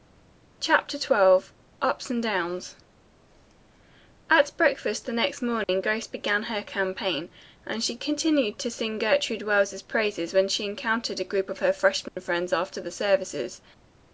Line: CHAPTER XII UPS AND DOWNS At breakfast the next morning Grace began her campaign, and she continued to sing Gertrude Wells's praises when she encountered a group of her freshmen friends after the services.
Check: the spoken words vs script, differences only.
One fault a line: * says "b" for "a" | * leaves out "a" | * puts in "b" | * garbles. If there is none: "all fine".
all fine